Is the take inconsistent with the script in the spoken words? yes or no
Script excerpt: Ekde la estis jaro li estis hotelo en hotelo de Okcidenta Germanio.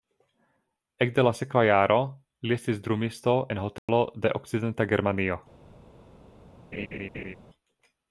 yes